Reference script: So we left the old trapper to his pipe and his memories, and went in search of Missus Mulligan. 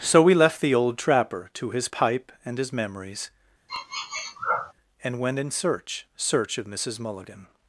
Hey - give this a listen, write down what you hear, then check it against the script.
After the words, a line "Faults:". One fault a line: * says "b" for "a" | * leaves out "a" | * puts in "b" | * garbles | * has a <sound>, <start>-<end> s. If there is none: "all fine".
So we left the old trapper to his pipe and his memories, and went in search search of Missus Mulligan.
Faults:
* has a sniff, 3.7-4.7 s
* puts in "search"